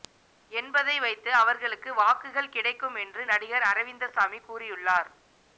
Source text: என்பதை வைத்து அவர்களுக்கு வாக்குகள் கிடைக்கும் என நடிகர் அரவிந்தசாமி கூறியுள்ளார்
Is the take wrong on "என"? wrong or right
wrong